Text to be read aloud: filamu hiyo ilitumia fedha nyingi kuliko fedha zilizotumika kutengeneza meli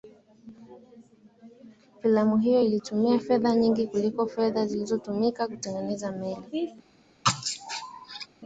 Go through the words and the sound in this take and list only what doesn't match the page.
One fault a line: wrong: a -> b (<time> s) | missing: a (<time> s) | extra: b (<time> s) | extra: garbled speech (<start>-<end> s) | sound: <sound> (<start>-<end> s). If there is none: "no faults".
sound: sneeze (7.2-8.3 s)